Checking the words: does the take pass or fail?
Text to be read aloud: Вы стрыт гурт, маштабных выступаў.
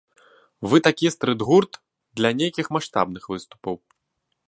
fail